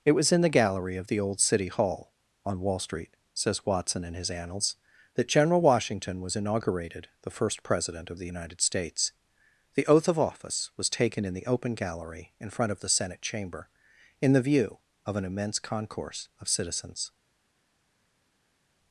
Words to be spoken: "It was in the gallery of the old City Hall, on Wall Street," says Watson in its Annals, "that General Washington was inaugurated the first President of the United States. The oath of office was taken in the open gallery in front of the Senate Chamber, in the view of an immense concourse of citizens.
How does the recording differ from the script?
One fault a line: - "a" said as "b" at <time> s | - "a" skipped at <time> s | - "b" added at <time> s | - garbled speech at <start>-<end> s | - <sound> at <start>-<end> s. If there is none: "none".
- "its" said as "his" at 4.2 s